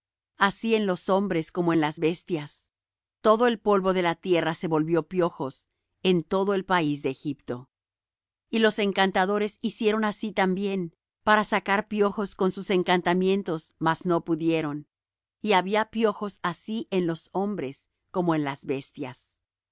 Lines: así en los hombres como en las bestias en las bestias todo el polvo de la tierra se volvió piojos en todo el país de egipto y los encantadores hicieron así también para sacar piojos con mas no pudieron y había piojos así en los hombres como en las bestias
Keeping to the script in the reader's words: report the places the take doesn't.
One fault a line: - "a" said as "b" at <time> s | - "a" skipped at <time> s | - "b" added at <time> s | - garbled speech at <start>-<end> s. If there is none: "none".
- "en las bestias" skipped at 2.7 s
- "sus encantamientos" added at 12.5 s